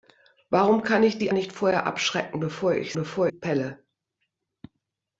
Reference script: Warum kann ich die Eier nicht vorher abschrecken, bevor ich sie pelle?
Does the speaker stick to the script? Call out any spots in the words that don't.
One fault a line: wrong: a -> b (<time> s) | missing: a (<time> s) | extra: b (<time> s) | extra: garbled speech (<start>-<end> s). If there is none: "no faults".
missing: Eier (1.3 s)
wrong: sie -> bevor (2.9 s)